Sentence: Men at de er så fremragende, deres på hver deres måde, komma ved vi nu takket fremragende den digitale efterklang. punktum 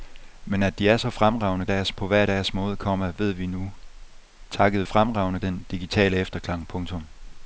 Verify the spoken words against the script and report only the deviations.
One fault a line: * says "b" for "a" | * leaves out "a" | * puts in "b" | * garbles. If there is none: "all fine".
all fine